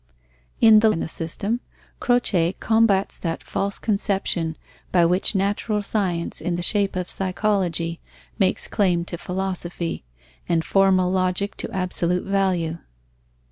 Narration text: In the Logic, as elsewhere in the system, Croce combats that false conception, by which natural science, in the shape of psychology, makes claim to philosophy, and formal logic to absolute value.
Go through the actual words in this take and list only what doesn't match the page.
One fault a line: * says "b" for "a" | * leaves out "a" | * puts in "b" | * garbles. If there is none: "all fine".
* leaves out "Logic as elsewhere"